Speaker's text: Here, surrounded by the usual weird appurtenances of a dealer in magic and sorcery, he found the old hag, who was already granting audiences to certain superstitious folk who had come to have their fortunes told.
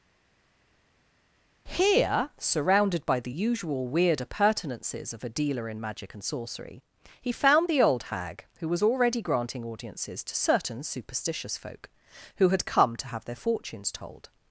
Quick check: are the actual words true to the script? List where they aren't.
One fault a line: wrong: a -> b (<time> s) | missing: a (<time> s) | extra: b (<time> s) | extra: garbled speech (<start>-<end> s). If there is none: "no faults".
no faults